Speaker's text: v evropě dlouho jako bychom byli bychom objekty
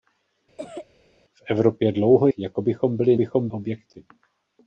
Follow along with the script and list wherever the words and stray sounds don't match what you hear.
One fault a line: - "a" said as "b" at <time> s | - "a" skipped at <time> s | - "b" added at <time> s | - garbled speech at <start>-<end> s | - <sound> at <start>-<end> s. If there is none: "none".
- cough at 0.6-0.9 s